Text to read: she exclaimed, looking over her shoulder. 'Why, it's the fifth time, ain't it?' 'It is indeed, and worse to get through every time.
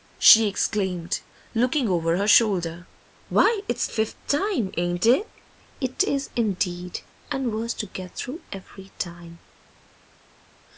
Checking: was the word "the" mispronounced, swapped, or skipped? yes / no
yes